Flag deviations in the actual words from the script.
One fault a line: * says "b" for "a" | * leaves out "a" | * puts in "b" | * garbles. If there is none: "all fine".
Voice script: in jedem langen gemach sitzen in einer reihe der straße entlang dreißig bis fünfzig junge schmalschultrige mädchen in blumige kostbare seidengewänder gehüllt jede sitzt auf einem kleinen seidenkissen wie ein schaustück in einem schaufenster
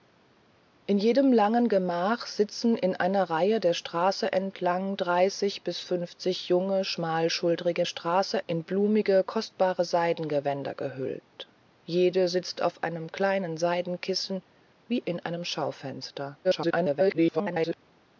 * says "straße" for "mädchen"
* leaves out "ein schaustück"
* garbles